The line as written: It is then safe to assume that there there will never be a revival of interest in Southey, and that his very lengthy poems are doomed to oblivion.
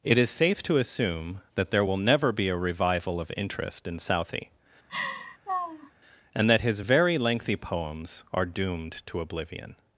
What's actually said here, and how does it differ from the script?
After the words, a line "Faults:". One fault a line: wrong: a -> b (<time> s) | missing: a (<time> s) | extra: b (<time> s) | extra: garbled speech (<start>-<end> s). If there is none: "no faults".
It is safe to assume that there will never be a revival of interest in Southey, and that his very lengthy poems are doomed to oblivion.
Faults:
missing: then (0.3 s)
missing: there (1.9 s)